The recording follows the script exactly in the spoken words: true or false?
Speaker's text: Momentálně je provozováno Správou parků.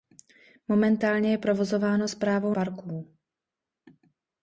true